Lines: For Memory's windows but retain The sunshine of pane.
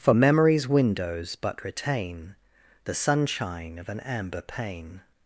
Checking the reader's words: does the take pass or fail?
fail